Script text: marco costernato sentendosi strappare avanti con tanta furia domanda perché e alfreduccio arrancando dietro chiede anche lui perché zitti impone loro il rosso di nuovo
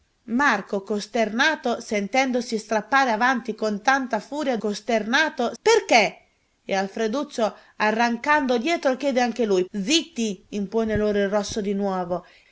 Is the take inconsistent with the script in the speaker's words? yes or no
yes